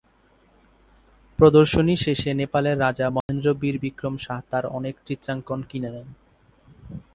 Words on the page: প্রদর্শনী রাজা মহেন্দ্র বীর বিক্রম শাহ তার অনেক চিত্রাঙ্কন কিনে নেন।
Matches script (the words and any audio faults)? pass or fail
fail